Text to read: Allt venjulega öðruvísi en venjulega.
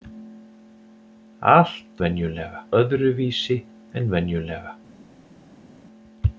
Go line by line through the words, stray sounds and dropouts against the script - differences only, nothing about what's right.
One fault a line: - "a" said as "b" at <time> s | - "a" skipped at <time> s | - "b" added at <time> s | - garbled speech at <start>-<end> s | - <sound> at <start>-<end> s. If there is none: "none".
none